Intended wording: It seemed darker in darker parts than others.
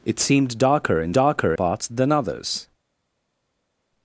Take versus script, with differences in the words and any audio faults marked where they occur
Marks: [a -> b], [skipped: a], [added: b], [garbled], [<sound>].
It seemed darker in darker parts than others.